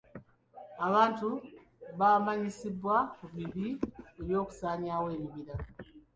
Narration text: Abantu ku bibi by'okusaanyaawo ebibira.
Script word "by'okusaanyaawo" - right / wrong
right